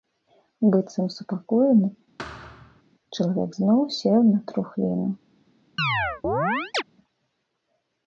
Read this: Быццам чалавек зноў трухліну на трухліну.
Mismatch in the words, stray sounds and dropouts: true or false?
true